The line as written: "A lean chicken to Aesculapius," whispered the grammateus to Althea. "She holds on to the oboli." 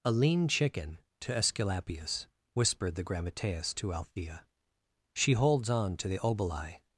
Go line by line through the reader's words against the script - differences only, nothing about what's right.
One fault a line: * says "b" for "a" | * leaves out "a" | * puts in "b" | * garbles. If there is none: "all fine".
all fine